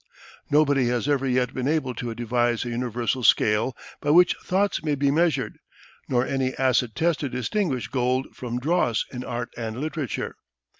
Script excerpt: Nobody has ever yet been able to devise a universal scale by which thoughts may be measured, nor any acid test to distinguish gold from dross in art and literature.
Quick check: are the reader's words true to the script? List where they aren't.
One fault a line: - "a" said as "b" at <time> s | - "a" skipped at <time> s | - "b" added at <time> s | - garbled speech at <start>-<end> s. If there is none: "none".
none